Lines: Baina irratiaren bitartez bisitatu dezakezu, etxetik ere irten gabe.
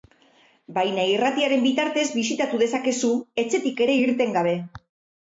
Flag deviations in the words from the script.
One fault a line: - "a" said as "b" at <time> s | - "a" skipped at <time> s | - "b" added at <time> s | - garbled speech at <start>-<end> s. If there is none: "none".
none